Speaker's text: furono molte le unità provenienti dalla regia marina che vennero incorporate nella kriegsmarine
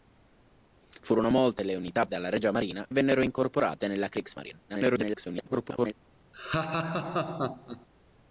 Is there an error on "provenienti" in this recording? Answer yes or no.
yes